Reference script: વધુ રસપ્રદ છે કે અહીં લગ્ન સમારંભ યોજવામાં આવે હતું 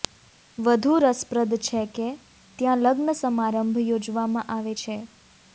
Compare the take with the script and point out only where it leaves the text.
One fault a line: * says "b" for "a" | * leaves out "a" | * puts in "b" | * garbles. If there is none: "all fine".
* says "ત્યાં" for "અહીં"
* says "છે" for "હતું"